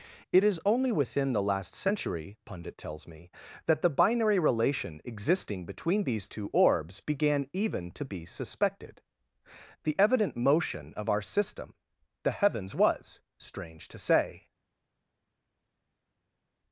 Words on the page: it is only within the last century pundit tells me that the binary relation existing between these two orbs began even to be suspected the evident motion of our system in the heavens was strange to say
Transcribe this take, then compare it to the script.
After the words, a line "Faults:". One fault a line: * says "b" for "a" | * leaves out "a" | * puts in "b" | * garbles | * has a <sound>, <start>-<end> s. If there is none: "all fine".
it is only within the last century pundit tells me that the binary relation existing between these two orbs began even to be suspected the evident motion of our system the heavens was strange to say
Faults:
* leaves out "in"